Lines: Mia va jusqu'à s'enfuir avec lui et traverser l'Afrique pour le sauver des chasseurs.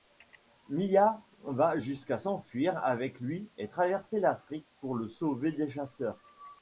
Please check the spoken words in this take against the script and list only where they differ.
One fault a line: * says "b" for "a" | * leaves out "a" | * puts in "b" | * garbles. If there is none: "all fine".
all fine